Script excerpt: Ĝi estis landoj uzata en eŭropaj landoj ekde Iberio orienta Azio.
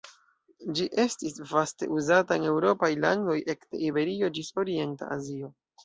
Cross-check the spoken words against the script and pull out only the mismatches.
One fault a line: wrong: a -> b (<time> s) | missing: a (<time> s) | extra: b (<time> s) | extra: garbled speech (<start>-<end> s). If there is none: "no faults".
wrong: landoj -> vaste (1.5 s)
extra: ĝis (4.4 s)